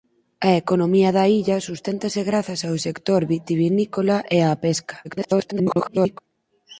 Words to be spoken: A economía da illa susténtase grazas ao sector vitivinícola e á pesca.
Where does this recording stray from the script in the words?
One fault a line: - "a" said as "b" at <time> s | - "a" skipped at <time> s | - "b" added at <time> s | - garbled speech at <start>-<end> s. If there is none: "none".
- garbled speech at 5.0-6.2 s